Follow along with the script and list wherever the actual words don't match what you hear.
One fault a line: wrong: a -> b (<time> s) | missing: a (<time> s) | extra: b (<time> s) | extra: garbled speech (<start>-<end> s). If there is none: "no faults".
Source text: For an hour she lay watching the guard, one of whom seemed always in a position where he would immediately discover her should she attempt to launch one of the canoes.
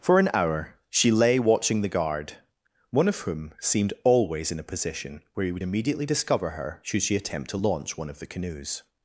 no faults